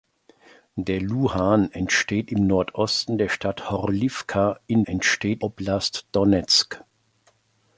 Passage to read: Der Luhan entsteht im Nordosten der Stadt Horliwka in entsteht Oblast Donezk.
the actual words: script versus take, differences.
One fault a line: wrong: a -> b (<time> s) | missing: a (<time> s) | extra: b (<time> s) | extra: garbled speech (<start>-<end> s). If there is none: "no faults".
no faults